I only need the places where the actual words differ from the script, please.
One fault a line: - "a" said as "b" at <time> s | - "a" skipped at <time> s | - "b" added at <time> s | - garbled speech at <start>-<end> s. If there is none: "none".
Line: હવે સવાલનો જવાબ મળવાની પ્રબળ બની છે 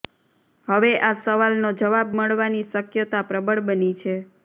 - "આ" added at 1.0 s
- "શક્યતા" added at 2.7 s